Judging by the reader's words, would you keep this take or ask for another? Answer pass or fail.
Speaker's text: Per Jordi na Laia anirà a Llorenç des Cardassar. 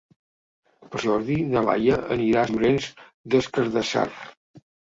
pass